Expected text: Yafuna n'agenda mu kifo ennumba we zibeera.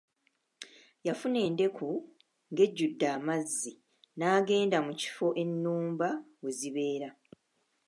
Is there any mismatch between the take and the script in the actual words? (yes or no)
yes